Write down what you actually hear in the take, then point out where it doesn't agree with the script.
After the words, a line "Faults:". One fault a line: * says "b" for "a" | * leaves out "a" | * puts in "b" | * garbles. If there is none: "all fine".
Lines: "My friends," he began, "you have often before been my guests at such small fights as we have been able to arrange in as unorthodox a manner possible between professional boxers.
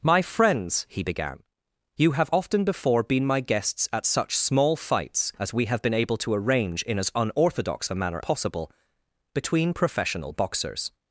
"My friends," he began, "you have often before been my guests at such small fights as we have been able to arrange in as unorthodox a manner possible between professional boxers.
Faults:
all fine